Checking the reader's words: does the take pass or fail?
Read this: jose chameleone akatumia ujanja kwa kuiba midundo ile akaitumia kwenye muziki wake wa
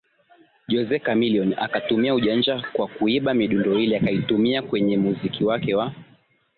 pass